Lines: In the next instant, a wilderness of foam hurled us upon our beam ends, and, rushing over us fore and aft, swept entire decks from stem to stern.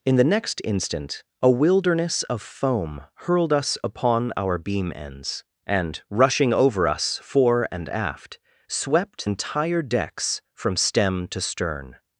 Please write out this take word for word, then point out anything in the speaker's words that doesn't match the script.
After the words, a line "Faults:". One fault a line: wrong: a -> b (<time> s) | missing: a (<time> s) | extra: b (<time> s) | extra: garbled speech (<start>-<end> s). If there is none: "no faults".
In the next instant, a wilderness of foam hurled us upon our beam ends, and, rushing over us fore and aft, swept entire decks from stem to stern.
Faults:
no faults